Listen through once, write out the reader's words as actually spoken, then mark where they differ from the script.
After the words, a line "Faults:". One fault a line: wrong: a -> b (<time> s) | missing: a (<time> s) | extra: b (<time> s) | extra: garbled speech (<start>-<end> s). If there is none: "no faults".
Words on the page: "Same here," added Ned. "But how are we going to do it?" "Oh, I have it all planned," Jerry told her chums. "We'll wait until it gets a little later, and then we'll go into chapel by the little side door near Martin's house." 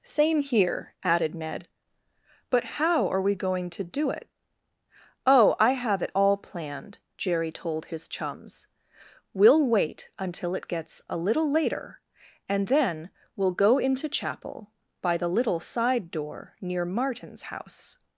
"Same here," added Ned. "But how are we going to do it?" "Oh, I have it all planned," Jerry told his chums. "We'll wait until it gets a little later, and then we'll go into chapel by the little side door near Martin's house."
Faults:
wrong: her -> his (7.9 s)